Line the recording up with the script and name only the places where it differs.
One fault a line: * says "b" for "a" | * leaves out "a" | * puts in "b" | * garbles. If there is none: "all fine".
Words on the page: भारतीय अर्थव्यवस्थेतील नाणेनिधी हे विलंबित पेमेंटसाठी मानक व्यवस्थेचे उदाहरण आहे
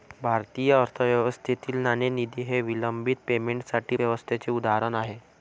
* leaves out "मानक"